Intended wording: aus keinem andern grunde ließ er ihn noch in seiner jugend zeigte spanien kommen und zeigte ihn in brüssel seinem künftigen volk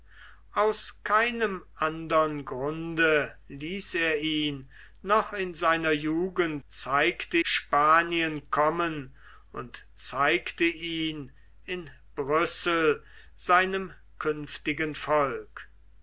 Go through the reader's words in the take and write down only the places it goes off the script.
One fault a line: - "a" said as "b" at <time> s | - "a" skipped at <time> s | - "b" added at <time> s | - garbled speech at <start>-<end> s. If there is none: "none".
none